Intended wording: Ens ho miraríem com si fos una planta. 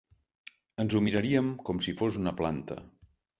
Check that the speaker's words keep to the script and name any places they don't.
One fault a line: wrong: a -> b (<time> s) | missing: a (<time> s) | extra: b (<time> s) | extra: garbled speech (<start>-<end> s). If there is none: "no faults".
no faults